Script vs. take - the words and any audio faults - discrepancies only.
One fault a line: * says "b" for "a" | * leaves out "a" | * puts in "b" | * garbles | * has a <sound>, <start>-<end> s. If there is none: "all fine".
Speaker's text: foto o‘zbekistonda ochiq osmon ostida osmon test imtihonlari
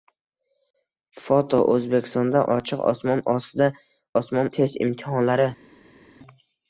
all fine